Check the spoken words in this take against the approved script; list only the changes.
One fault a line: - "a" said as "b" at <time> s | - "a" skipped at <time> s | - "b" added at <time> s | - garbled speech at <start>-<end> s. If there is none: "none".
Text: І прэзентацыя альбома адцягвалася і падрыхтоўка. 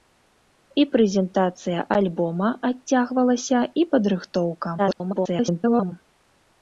- garbled speech at 4.8-5.9 s